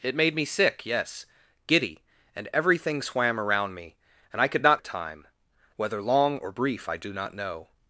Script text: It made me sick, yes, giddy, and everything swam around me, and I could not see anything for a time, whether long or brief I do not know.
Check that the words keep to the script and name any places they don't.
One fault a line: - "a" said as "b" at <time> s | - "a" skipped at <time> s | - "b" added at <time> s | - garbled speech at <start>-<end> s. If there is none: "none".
- "see anything for" skipped at 4.8 s